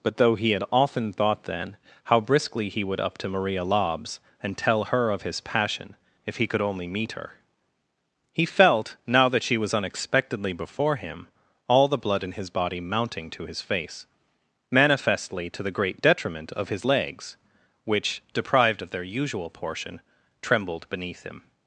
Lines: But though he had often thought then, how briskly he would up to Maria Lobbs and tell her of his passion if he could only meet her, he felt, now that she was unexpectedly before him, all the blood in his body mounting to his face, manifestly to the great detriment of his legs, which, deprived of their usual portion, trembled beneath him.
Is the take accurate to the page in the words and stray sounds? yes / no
yes